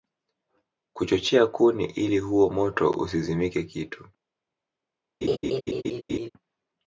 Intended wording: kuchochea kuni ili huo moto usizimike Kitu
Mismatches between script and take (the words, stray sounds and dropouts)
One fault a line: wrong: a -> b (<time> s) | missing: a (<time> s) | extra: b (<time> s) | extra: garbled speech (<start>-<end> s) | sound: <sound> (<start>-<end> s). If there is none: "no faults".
sound: laugh (5.2-6.3 s)